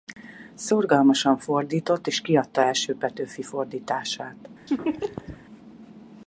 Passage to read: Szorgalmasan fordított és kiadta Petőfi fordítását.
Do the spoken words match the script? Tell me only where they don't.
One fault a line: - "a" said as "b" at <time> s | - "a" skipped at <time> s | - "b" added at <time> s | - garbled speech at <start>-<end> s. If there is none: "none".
- "első" added at 2.6 s